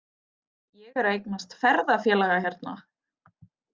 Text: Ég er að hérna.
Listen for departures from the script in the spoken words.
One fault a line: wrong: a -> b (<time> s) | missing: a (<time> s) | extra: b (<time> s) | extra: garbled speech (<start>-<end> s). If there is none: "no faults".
extra: eignast ferðafélaga (1.2 s)